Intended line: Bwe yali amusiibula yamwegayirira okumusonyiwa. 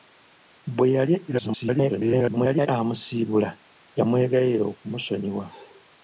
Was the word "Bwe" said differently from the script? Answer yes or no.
no